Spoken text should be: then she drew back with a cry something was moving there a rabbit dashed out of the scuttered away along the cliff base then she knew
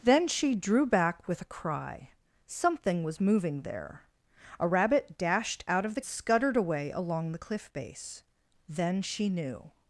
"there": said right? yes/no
yes